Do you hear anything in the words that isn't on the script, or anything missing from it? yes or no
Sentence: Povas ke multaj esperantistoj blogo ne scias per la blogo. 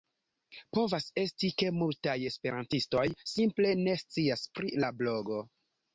yes